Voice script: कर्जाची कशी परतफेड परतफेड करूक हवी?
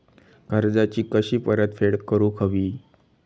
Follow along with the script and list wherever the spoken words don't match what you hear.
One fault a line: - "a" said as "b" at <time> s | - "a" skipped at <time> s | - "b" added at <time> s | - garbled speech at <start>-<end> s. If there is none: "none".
- "परतफेड" skipped at 2.0 s